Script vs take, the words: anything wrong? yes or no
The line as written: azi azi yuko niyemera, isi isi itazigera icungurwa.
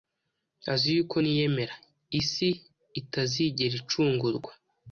yes